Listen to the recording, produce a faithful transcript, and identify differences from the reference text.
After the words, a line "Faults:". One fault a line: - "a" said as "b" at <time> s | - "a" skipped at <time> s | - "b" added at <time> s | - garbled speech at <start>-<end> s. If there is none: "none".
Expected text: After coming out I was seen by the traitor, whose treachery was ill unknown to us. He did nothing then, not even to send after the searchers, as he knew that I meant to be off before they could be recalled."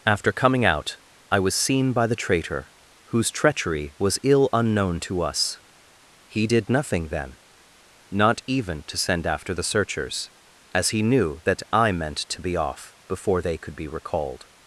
After coming out I was seen by the traitor, whose treachery was ill unknown to us. He did nothing then, not even to send after the searchers, as he knew that I meant to be off before they could be recalled."
Faults:
none